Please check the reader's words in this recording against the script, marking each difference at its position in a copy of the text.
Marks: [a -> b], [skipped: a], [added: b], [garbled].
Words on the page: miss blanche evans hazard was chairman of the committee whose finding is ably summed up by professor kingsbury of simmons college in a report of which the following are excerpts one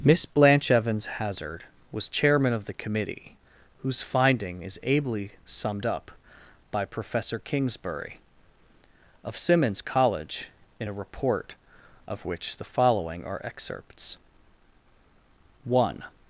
miss blanche evans hazard was chairman of the committee whose finding is ably summed up by professor kingsbury of simmons college in a report of which the following are excerpts one